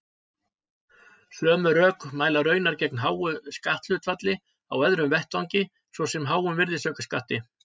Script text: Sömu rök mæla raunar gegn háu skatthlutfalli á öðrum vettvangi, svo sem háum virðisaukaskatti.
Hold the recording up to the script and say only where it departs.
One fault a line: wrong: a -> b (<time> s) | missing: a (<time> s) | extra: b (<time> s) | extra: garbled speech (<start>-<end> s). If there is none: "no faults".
no faults